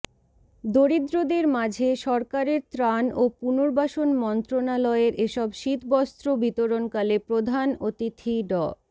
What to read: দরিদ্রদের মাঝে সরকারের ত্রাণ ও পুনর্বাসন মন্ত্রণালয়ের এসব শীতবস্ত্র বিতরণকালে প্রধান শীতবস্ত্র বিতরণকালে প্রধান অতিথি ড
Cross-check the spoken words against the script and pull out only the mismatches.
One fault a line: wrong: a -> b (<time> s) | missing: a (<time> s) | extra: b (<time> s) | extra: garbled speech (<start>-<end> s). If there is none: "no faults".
missing: শীতবস্ত্র বিতরণকালে প্রধান (7.7 s)